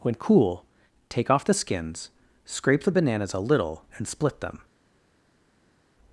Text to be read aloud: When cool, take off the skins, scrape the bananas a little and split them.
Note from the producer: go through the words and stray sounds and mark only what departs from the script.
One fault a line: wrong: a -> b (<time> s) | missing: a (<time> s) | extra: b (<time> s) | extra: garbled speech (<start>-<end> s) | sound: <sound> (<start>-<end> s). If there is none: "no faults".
no faults